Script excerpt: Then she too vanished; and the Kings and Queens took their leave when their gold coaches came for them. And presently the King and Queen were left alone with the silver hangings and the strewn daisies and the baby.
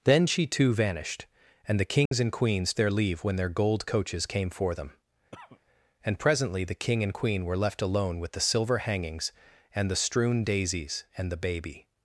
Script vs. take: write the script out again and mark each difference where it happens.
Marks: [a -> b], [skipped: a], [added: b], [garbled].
Then she too vanished; and the Kings and Queens [skipped: took] their leave when their gold coaches came for them. And presently the King and Queen were left alone with the silver hangings and the strewn daisies and the baby.